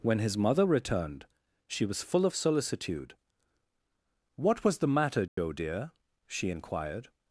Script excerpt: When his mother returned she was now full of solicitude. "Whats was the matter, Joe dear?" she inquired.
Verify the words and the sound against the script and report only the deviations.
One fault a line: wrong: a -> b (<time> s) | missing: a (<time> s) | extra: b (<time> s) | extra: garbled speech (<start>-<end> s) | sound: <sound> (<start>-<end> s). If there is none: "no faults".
missing: now (2.0 s)
wrong: Whats -> What (4.4 s)
sound: dropout (5.3-5.4 s)